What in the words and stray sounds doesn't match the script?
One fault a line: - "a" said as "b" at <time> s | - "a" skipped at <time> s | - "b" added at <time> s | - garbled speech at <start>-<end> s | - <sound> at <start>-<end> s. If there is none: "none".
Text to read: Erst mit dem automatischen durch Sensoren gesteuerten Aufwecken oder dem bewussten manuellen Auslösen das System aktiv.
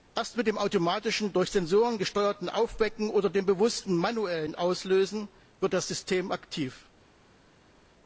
- "wird" added at 5.6 s